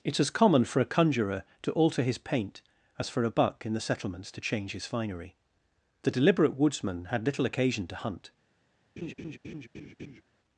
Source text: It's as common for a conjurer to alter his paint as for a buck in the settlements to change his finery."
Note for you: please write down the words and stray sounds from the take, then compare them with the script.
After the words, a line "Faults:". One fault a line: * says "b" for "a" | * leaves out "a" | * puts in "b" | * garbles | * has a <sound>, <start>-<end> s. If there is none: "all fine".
It's as common for a conjurer to alter his paint as for a buck in the settlements to change his finery." The deliberate woodsman had little occasion to hunt
Faults:
* puts in "The deliberate woodsman had little occasion to hunt"
* has a laugh, 9.0-10.2 s